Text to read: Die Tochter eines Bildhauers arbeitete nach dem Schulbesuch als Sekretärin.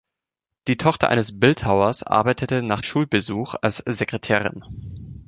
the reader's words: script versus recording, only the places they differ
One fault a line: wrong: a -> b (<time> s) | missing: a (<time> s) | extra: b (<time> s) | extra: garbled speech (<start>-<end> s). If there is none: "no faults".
missing: dem (2.8 s)